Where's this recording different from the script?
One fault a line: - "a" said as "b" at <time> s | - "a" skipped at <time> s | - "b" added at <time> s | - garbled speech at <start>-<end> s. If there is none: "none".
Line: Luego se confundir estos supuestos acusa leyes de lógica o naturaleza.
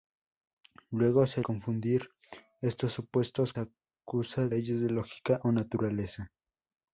none